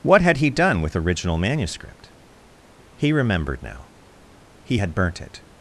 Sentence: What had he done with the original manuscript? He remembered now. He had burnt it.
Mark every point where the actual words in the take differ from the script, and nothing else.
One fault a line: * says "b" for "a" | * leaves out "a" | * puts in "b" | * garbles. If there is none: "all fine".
* leaves out "the"